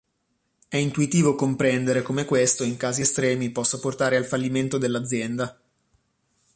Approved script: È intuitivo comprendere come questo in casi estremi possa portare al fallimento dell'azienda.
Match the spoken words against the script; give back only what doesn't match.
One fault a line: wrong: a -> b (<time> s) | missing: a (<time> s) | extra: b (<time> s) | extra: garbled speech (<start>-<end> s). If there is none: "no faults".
no faults